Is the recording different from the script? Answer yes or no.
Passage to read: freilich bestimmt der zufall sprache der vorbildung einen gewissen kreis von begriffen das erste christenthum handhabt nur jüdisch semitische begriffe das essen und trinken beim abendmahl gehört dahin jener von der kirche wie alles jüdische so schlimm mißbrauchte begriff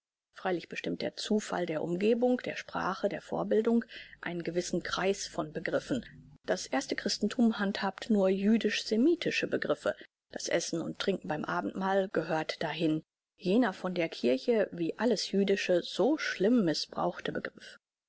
yes